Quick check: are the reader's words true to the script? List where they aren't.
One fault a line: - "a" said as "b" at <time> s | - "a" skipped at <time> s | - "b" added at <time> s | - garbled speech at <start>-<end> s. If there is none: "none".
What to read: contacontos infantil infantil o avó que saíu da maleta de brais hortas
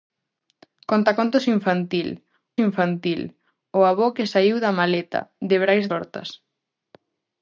none